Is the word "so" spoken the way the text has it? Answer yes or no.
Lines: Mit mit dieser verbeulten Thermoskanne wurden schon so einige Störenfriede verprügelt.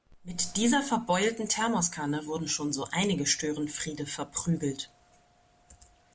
yes